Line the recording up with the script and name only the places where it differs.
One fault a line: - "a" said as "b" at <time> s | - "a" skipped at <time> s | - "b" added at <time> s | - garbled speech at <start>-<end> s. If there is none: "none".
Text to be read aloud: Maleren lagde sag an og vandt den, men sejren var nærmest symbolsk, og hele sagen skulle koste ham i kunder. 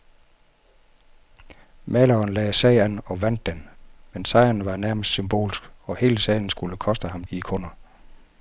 none